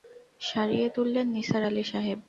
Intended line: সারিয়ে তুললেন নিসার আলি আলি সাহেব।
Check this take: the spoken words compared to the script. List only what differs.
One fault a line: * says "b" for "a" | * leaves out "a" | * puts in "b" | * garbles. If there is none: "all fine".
* leaves out "আলি"